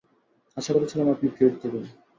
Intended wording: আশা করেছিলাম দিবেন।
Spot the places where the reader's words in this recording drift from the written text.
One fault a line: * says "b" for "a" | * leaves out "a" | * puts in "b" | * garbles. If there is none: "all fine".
* puts in "আপনি ট্রিট"